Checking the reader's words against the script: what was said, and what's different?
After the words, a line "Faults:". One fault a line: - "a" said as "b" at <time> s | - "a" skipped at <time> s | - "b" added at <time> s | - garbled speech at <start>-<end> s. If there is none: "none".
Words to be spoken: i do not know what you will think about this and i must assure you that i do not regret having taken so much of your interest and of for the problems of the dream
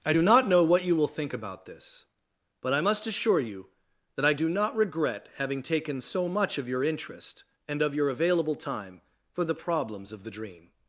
i do not know what you will think about this but i must assure you that i do not regret having taken so much of your interest and of your available time for the problems of the dream
Faults:
- "and" said as "but" at 2.6 s
- "your available time" added at 7.9 s